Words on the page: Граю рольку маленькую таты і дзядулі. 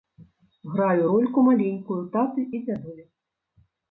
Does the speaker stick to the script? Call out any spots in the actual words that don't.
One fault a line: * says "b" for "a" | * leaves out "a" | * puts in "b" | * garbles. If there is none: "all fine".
all fine